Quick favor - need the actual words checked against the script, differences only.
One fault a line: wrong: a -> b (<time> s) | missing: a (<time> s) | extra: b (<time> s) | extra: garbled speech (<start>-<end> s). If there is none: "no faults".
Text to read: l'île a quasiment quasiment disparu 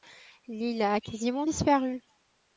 missing: quasiment (1.4 s)